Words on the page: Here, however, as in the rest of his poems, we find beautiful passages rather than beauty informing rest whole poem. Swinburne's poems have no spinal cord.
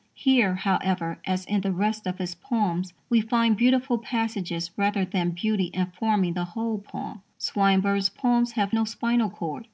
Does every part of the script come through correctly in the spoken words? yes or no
no